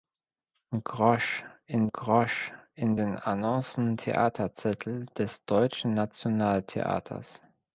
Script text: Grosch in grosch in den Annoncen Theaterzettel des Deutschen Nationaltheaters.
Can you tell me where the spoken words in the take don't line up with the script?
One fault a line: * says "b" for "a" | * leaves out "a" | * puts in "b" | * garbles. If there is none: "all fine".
all fine